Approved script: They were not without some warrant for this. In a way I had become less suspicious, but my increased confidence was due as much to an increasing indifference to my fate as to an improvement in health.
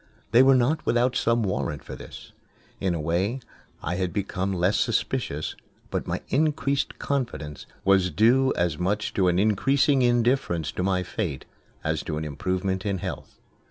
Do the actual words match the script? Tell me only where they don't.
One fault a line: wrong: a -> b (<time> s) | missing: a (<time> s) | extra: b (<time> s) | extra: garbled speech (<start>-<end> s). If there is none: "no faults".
no faults